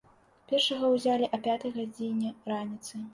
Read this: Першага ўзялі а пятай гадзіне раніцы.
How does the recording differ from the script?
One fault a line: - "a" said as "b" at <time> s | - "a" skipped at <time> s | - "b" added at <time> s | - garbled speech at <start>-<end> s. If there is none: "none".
none